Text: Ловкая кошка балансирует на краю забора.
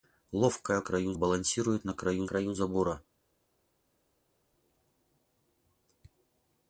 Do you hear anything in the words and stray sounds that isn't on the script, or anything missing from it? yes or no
yes